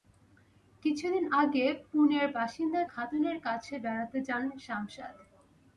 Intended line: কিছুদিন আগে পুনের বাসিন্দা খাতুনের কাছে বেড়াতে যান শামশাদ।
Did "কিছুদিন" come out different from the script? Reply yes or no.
no